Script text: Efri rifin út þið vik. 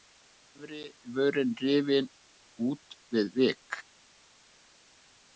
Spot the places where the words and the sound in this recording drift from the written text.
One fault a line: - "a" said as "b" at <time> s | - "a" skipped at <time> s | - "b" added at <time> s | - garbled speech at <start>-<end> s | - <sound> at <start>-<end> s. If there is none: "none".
- "vörin" added at 1.1 s
- "þið" said as "við" at 3.1 s